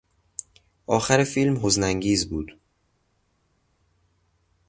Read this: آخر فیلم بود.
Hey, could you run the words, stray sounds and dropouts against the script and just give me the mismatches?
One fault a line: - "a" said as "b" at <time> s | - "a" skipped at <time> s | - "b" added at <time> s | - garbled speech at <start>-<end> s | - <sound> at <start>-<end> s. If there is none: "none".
- "حزن انگیز" added at 1.6 s